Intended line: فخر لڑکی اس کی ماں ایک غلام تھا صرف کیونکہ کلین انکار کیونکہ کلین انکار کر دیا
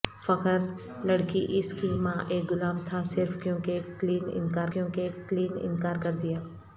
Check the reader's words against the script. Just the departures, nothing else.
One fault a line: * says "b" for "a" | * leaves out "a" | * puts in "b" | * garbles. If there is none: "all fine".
all fine